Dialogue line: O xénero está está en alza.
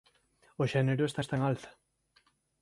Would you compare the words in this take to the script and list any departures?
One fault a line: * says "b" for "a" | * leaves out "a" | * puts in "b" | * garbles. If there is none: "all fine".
all fine